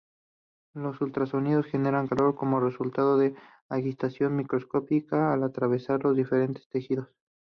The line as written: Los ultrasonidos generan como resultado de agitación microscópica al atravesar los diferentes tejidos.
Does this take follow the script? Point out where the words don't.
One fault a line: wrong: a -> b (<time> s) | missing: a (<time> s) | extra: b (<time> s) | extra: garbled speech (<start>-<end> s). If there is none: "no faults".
extra: calor (2.0 s)